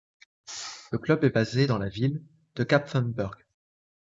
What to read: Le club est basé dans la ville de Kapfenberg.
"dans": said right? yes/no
yes